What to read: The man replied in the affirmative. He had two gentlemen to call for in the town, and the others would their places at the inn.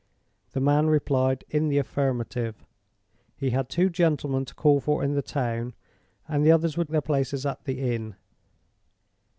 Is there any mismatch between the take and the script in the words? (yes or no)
no